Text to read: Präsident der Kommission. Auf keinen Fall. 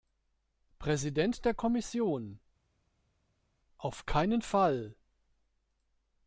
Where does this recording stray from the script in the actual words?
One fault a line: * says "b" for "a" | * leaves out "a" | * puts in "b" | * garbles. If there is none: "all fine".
all fine